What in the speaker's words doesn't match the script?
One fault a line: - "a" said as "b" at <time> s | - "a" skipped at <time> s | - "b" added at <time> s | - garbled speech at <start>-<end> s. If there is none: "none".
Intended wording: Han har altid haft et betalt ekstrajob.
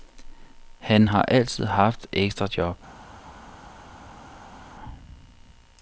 - "et betalt" skipped at 2.1 s